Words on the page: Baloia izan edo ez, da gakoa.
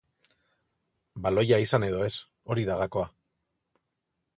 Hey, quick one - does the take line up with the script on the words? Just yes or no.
no